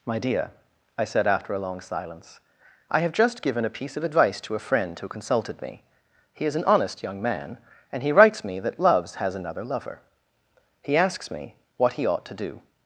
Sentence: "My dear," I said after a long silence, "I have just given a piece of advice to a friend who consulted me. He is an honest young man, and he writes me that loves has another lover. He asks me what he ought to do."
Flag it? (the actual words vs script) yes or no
no